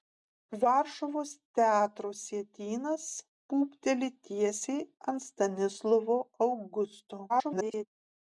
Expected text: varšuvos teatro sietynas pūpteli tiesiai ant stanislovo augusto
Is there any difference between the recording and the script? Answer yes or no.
yes